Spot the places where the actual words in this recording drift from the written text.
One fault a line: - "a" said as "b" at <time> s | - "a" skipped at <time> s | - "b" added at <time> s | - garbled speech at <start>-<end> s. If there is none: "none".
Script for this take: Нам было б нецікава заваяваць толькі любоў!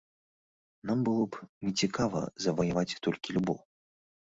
none